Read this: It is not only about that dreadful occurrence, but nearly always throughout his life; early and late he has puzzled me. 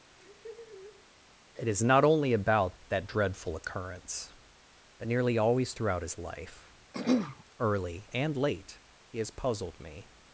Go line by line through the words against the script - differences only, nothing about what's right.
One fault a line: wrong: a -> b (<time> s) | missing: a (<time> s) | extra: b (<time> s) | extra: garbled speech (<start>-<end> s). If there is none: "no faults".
no faults